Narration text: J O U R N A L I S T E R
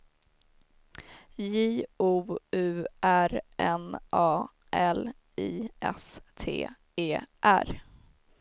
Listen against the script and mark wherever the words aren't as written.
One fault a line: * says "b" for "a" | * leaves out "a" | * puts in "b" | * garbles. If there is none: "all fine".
all fine